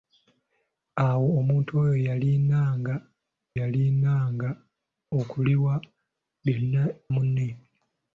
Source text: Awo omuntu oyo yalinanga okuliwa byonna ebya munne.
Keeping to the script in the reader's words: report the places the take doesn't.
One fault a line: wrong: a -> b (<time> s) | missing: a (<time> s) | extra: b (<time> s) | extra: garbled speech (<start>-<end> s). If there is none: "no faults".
extra: yalinanga (3.6 s)
missing: ebya (6.8 s)